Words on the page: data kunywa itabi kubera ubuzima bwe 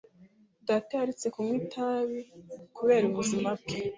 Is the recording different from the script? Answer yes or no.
yes